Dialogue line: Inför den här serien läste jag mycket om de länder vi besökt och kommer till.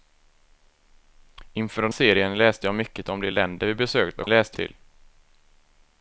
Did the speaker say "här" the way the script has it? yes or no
no